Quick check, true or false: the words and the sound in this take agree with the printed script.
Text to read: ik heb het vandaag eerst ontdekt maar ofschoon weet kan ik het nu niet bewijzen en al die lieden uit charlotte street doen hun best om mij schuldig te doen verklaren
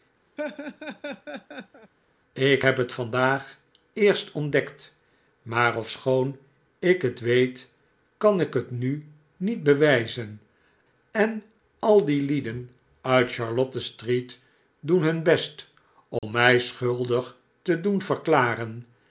false